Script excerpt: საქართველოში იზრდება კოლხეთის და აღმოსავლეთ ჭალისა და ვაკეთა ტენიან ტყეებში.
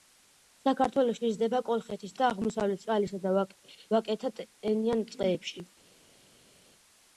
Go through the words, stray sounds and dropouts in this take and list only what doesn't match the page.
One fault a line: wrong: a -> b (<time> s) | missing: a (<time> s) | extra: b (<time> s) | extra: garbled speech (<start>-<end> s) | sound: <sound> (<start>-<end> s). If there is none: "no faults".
no faults